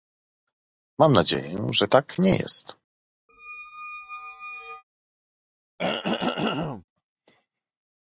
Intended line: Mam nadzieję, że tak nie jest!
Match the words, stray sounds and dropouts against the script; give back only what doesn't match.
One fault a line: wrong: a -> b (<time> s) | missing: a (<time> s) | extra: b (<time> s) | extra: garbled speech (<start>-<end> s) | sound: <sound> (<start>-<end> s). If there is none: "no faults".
sound: squeak (3.3-4.8 s)
sound: throat clearing (5.8-6.8 s)